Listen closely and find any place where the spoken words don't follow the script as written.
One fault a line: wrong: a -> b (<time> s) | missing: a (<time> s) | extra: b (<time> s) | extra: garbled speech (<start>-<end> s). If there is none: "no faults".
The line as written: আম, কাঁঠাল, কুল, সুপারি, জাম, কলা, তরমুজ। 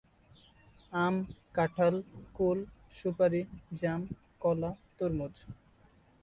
no faults